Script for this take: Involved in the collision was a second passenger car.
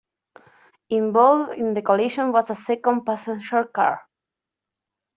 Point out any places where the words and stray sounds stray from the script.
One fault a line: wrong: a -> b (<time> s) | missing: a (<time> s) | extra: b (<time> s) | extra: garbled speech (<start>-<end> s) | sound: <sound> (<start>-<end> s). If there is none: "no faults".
no faults